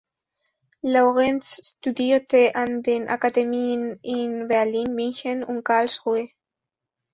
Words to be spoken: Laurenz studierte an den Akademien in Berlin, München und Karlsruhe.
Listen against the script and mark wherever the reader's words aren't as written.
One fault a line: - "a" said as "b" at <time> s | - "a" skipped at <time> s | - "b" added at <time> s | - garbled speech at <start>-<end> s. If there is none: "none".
none